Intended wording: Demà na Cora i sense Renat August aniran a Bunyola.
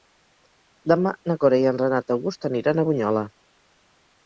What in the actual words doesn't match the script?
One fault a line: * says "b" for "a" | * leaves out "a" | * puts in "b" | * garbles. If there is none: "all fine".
* says "en" for "sense"